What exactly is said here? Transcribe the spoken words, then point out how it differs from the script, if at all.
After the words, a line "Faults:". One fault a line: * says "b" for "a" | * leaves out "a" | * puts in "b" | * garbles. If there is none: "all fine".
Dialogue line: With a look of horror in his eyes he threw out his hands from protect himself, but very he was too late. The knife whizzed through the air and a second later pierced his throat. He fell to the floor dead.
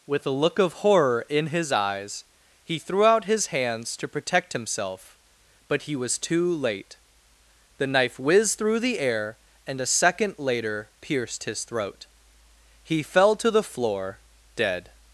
With a look of horror in his eyes he threw out his hands to protect himself, but he was too late. The knife whizzed through the air and a second later pierced his throat. He fell to the floor dead.
Faults:
* says "to" for "from"
* leaves out "very"